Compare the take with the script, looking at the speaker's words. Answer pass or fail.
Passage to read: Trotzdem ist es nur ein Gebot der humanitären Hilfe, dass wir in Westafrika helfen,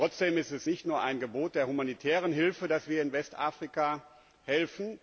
fail